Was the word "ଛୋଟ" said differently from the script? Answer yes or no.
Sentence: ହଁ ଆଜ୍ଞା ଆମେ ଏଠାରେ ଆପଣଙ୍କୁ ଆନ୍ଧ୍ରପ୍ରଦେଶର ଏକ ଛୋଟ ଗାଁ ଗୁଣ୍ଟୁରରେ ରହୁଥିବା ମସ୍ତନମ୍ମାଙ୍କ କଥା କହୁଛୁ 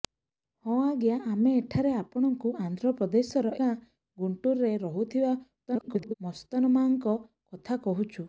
yes